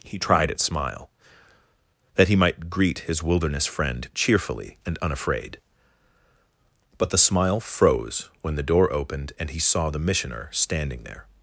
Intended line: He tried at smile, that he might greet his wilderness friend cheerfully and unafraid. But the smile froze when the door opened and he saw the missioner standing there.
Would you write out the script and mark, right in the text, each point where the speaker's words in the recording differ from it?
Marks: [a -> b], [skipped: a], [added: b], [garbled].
He tried at smile, that he might greet his wilderness friend cheerfully and unafraid. But the smile froze when the door opened and he saw the missioner standing there.